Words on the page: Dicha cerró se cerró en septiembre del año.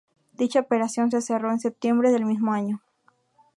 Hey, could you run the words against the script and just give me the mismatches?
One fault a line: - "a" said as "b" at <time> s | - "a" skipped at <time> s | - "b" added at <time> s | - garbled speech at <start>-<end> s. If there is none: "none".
- "cerró" said as "operación" at 0.6 s
- "mismo" added at 2.2 s